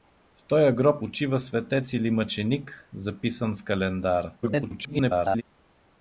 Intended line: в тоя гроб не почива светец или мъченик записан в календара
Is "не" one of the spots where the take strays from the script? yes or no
yes